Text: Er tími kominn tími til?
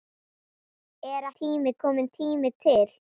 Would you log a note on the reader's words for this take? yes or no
no